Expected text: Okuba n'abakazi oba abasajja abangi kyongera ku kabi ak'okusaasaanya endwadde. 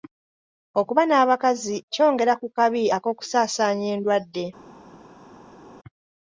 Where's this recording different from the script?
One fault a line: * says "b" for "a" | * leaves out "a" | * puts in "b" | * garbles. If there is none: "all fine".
* leaves out "oba abasajja abangi"